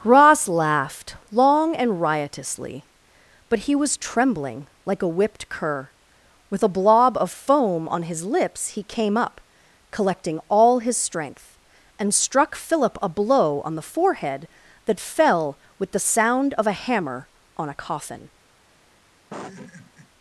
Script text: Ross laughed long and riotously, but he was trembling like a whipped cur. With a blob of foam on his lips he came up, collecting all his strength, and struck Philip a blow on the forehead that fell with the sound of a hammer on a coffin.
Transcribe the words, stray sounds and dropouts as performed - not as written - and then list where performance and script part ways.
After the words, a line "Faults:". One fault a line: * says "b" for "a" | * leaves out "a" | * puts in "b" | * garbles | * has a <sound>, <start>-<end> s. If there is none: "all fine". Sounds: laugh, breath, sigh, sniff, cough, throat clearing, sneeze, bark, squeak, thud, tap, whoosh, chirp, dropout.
Ross laughed long and riotously, but he was trembling like a whipped cur. With a blob of foam on his lips he came up, collecting all his strength, and struck Philip a blow on the forehead that fell with the sound of a hammer on a coffin.
Faults:
* has a laugh, 19.3-20.1 s